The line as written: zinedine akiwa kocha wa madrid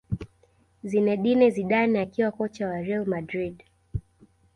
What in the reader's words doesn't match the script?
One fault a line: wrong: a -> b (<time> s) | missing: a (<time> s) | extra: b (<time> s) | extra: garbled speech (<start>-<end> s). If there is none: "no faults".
extra: zidane (1.5 s)
extra: real (2.8 s)